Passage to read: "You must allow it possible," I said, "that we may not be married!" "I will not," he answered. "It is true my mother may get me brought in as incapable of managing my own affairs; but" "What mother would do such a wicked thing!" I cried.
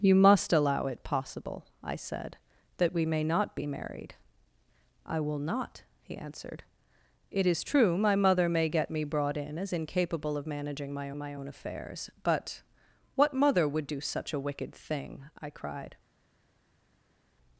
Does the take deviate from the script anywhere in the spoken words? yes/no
yes